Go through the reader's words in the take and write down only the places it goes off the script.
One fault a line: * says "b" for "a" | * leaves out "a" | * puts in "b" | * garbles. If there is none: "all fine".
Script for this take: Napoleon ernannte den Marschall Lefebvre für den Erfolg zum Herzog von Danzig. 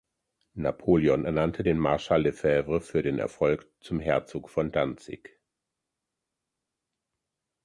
all fine